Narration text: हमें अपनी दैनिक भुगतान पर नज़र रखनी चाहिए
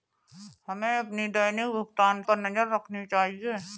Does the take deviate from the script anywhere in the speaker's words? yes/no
no